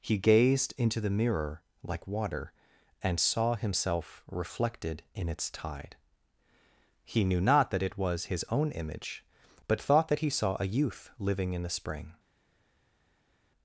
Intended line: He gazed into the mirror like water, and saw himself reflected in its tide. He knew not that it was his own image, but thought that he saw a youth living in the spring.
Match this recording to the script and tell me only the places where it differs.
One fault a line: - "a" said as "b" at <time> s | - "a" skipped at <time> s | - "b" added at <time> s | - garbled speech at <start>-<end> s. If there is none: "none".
none